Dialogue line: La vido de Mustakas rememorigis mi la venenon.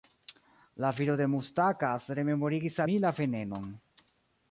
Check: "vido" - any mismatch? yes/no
no